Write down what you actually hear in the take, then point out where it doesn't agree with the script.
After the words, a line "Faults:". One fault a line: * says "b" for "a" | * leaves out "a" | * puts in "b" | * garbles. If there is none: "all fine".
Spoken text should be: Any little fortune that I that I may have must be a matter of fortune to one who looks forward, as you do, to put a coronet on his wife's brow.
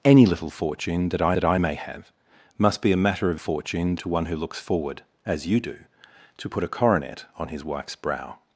Any little fortune that I that I may have must be a matter of fortune to one who looks forward, as you do, to put a coronet on his wife's brow.
Faults:
all fine